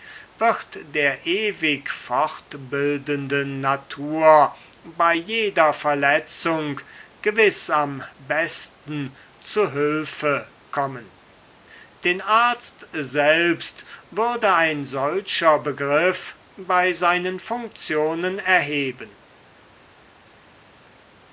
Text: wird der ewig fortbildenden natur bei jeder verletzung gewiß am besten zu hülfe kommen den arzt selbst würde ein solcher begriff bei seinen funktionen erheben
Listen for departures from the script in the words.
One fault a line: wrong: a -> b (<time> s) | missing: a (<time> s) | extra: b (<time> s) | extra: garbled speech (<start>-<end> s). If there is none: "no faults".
no faults